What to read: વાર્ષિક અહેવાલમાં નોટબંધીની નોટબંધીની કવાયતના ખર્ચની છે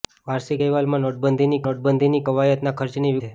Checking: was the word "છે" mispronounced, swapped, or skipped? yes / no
no